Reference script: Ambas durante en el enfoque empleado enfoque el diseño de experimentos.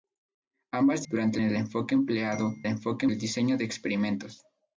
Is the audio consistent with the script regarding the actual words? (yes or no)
yes